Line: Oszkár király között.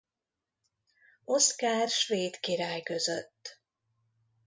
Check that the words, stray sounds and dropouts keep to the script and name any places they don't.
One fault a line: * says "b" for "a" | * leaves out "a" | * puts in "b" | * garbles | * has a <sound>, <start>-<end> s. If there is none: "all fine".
* puts in "svéd"